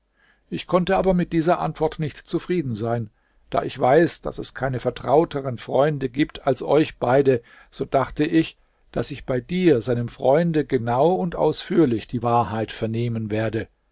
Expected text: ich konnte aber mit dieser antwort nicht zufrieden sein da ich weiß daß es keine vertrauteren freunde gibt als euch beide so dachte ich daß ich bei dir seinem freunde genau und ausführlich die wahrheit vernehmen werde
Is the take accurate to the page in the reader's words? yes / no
yes